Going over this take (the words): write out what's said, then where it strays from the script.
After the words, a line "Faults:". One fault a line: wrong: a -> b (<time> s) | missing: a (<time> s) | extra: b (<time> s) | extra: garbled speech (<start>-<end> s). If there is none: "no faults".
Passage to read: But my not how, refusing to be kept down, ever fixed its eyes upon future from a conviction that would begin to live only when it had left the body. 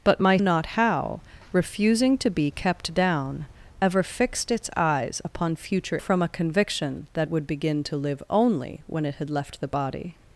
But my not how, refusing to be kept down, ever fixed its eyes upon future from a conviction that would begin to live only when it had left the body.
Faults:
no faults